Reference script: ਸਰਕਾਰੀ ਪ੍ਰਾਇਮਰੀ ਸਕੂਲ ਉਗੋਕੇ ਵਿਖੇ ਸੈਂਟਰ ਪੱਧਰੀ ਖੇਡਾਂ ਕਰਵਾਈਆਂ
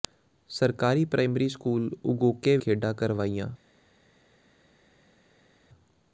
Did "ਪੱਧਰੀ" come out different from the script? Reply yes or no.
yes